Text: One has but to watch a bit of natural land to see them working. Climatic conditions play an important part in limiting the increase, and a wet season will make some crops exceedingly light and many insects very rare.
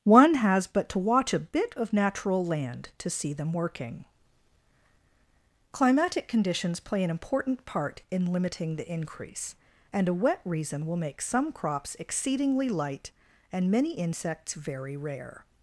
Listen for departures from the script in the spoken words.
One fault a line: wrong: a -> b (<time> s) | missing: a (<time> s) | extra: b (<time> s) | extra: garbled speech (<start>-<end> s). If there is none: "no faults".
wrong: season -> reason (10.4 s)